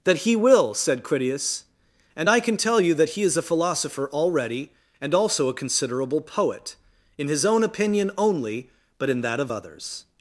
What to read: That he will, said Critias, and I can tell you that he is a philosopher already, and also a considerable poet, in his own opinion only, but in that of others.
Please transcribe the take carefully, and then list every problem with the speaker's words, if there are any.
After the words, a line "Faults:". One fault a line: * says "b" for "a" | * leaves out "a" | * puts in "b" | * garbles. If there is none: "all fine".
That he will, said Critias, and I can tell you that he is a philosopher already, and also a considerable poet, in his own opinion only, but in that of others.
Faults:
all fine